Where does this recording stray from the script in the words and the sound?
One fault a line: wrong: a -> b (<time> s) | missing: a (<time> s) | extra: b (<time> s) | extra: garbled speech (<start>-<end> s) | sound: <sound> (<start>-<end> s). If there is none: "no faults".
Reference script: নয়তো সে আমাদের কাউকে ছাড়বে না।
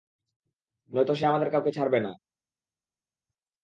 no faults